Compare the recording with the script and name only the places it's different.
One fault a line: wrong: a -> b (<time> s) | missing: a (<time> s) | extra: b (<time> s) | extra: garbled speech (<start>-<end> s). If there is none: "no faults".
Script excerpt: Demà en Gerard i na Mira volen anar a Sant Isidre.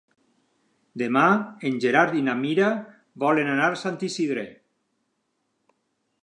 no faults